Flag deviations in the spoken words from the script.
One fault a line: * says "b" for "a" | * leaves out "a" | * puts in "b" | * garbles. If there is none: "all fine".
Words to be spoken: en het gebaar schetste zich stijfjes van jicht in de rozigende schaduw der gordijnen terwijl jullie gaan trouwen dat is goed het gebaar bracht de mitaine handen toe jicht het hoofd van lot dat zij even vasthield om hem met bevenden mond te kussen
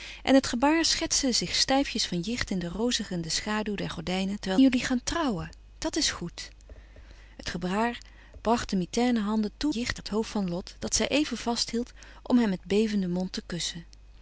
all fine